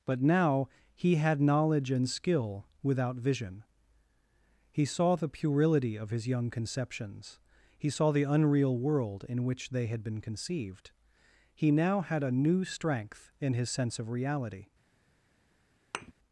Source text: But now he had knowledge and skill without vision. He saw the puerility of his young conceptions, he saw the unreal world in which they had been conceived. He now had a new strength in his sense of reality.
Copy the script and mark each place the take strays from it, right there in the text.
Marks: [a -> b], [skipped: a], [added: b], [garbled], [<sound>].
But now he had knowledge and skill without vision. He saw the puerility of his young conceptions, he saw the unreal world in which they had been conceived. He now had a new strength in his sense of reality. [thud]